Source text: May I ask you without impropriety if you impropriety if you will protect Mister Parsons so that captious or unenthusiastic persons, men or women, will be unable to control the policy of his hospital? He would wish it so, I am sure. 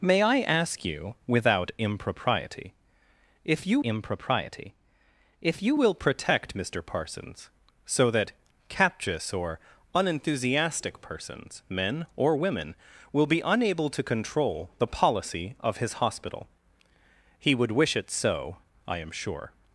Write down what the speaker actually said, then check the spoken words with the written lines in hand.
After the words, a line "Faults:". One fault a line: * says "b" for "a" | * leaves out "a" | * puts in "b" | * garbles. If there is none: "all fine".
May I ask you without impropriety if you impropriety if you will protect Mister Parsons so that captious or unenthusiastic persons, men or women, will be unable to control the policy of his hospital? He would wish it so, I am sure.
Faults:
all fine